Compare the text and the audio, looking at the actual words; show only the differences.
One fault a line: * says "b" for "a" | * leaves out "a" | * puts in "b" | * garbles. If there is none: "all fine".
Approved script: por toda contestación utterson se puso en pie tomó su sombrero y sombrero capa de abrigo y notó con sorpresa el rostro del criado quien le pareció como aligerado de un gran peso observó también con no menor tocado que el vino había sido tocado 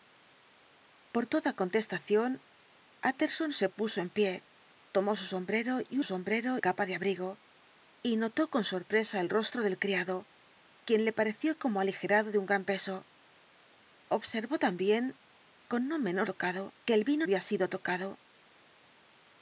all fine